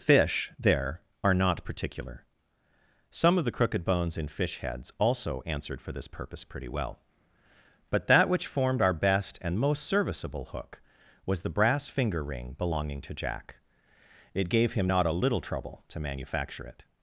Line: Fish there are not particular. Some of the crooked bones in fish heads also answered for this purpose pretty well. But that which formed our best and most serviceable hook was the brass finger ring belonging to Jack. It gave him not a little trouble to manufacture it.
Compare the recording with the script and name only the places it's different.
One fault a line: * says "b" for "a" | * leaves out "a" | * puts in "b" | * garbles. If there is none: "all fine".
all fine